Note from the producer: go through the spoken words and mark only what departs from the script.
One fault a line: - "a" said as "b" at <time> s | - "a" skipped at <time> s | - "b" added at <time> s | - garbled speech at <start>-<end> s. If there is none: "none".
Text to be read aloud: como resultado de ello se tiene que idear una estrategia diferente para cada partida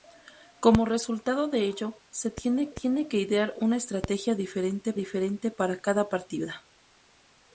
- "tiene" added at 2.7 s
- "diferente" added at 4.9 s